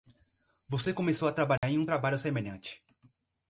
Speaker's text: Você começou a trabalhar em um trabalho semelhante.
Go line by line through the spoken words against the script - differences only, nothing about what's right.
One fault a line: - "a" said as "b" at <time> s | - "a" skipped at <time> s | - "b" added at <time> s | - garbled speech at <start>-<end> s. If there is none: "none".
none